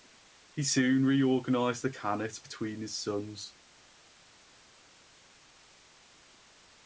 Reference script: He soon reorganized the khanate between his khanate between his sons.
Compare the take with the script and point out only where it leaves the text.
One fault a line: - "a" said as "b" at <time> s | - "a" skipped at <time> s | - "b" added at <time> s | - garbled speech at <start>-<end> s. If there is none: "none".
- "khanate between his" skipped at 3.0 s